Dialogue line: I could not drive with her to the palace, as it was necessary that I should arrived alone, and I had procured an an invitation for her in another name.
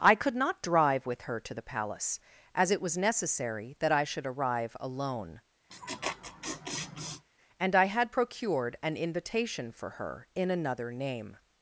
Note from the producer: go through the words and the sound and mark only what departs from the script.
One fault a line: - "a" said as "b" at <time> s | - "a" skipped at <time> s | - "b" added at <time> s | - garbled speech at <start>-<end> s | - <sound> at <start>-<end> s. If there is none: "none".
- "arrived" said as "arrive" at 4.2 s
- laugh at 5.7-7.2 s
- "an" skipped at 9.0 s